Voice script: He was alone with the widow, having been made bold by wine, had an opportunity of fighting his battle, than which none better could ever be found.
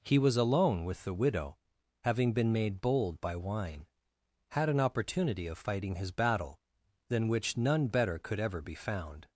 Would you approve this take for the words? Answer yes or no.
yes